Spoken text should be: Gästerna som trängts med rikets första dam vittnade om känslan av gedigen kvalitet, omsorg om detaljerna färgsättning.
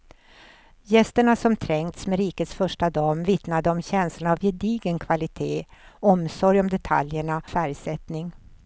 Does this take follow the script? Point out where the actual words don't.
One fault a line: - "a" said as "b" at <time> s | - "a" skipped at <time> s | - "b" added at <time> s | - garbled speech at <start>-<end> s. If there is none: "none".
none